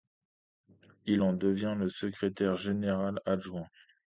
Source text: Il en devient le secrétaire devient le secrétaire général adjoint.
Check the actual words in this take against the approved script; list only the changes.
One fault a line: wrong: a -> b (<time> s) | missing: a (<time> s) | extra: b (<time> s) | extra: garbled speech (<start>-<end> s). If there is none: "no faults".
missing: devient le secrétaire (2.6 s)